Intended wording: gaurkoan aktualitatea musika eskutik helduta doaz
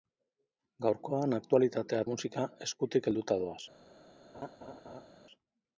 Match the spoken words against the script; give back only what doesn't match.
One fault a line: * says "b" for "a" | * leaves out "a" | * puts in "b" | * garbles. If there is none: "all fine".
all fine